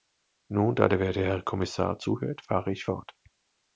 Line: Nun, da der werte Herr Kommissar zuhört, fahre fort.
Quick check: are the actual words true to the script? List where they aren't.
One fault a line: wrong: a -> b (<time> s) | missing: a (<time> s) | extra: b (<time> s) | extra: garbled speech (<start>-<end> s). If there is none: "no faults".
extra: ich (2.7 s)